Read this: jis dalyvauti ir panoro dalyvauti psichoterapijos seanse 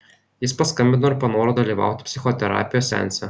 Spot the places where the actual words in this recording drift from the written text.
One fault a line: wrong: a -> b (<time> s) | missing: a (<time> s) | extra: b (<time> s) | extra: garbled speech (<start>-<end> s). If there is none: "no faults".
wrong: dalyvauti -> paskambino (0.6 s)